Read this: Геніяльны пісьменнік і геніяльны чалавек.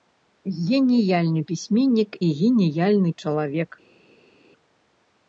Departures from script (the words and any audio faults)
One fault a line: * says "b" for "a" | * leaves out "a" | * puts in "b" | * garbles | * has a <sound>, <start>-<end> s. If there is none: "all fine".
all fine